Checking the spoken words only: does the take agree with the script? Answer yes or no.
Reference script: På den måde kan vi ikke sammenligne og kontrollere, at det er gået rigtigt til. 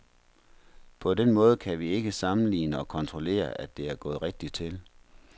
yes